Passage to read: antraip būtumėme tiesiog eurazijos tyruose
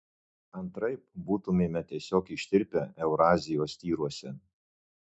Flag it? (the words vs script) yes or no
yes